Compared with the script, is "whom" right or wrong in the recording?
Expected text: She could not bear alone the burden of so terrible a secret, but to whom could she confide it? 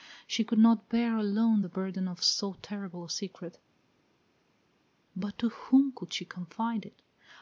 right